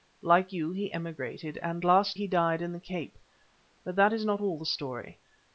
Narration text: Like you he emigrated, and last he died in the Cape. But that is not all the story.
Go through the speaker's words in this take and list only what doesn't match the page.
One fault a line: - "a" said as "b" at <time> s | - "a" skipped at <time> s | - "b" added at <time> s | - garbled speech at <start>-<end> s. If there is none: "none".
none